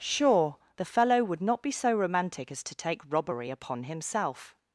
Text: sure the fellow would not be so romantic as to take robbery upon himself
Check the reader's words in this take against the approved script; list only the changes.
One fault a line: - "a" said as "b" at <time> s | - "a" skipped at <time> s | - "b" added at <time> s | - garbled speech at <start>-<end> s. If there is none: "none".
none